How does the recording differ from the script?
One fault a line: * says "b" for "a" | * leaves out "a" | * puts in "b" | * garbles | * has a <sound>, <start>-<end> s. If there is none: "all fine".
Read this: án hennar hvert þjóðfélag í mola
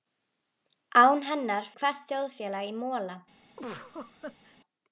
* has a laugh, 3.6-4.6 s